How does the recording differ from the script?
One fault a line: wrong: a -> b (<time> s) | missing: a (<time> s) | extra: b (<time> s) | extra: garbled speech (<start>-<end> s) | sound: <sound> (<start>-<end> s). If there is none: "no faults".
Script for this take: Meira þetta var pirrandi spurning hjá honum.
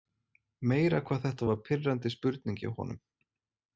extra: hvað (1.1 s)